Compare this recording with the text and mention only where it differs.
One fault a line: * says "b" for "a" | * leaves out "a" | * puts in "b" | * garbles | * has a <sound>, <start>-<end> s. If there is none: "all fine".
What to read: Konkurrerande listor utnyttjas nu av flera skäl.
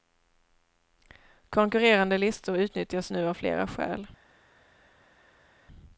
all fine